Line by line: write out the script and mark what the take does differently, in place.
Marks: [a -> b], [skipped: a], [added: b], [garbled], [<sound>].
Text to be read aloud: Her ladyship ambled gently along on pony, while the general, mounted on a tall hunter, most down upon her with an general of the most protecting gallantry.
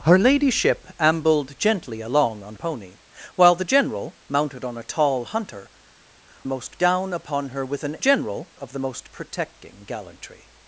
Her ladyship ambled gently along on pony, while the general, mounted on a tall hunter, most down upon her with an general of the most protecting gallantry.